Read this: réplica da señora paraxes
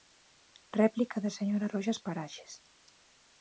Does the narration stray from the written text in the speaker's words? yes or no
yes